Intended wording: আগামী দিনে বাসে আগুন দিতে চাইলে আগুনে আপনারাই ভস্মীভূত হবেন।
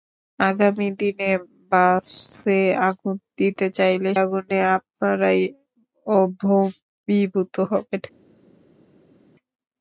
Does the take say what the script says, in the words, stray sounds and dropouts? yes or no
yes